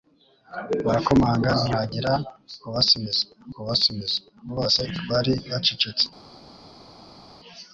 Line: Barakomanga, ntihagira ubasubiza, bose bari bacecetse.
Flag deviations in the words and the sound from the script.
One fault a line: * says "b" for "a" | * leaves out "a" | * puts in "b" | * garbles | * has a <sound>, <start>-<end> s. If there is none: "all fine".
* puts in "ubasubiza"